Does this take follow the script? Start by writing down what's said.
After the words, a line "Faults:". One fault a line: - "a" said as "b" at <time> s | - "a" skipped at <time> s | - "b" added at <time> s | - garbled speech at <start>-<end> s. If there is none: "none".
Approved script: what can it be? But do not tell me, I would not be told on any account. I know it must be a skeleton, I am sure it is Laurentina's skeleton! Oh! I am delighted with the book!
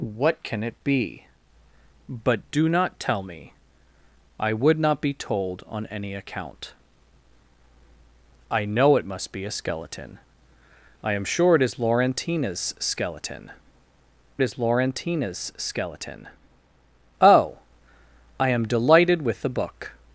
what can it be? But do not tell me, I would not be told on any account. I know it must be a skeleton, I am sure it is Laurentina's skeleton is Laurentina's skeleton! Oh! I am delighted with the book!
Faults:
- "is Laurentina's skeleton" added at 14.4 s